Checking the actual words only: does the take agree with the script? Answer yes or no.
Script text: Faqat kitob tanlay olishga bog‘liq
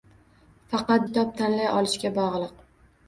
yes